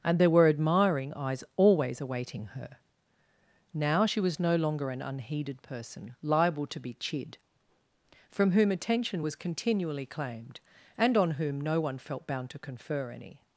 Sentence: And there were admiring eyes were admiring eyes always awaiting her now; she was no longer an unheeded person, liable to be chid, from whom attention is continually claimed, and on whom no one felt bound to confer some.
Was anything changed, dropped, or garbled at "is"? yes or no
yes